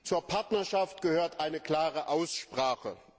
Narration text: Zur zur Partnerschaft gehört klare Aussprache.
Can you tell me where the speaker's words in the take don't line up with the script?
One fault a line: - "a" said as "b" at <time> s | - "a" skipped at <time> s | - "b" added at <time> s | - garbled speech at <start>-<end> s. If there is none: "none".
- "zur" skipped at 0.2 s
- "eine" added at 1.4 s